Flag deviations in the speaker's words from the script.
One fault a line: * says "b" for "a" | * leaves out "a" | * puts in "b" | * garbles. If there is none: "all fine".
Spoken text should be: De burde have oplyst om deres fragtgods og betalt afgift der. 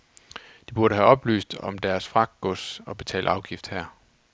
* says "her" for "der"